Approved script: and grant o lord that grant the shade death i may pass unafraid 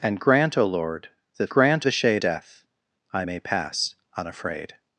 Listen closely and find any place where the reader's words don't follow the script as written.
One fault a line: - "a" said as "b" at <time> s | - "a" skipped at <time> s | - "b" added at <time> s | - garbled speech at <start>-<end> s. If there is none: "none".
none